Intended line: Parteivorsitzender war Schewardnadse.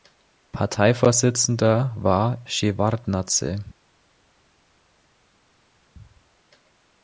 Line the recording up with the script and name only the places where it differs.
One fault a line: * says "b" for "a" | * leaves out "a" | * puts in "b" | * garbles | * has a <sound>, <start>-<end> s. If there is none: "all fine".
all fine